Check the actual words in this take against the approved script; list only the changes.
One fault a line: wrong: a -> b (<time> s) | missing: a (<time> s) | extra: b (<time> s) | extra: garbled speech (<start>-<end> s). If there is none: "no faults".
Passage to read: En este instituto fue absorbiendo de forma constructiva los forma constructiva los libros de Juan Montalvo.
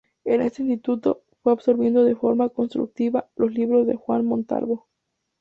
missing: forma constructiva los (3.5 s)